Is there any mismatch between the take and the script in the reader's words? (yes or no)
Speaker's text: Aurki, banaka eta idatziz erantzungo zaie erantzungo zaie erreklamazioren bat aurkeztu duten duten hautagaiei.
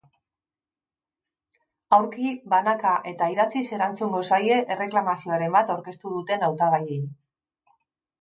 yes